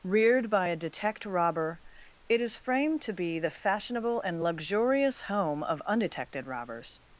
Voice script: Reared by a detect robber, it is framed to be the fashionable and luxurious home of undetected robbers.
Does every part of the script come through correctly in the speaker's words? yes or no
yes